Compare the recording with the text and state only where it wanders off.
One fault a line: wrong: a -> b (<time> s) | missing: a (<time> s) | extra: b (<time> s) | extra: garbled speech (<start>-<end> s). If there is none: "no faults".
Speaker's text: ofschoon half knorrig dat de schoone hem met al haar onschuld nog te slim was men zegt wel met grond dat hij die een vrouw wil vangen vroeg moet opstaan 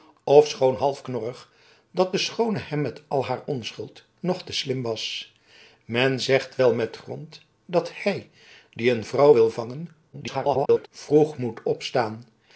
extra: garbled speech (10.1-10.9 s)